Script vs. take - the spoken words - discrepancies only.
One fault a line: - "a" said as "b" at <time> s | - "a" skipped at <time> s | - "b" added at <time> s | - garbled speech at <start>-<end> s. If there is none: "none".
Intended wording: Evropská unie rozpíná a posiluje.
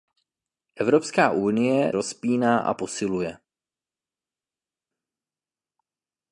none